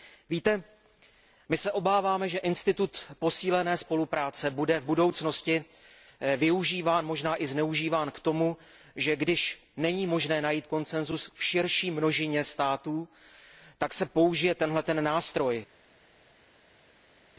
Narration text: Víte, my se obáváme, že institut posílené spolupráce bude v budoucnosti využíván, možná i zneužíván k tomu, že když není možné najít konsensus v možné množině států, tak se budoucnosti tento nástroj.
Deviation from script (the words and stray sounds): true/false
true